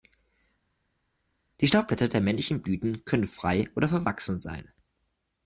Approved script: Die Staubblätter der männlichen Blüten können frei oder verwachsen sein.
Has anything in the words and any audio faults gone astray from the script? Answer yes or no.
no